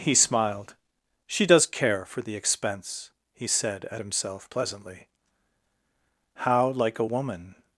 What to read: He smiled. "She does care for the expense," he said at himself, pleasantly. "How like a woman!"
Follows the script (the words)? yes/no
yes